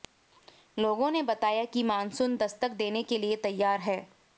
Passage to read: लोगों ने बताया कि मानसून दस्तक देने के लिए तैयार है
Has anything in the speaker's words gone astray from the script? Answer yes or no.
no